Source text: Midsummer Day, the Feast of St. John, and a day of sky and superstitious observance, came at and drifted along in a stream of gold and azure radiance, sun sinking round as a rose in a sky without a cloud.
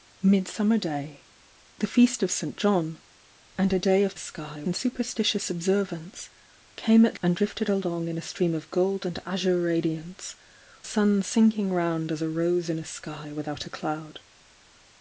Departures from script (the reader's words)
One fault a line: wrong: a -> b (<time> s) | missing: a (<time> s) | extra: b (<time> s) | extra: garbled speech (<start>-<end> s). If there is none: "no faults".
no faults